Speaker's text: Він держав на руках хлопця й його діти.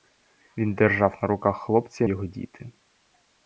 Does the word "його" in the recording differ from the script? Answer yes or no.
no